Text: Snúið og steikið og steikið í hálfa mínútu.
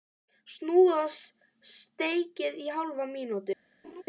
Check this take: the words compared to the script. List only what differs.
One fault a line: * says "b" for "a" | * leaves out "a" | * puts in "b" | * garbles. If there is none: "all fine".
* leaves out "og steikið"